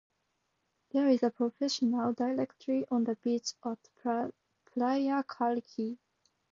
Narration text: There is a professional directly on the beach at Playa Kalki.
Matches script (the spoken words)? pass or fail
pass